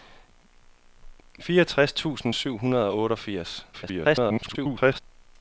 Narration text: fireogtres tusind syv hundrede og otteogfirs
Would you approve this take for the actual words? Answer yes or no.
no